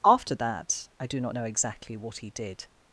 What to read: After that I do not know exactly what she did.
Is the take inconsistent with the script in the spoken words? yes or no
yes